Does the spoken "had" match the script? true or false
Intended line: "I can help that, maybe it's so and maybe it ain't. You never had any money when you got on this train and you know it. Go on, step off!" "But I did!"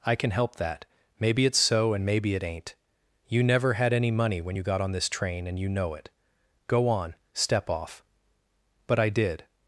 true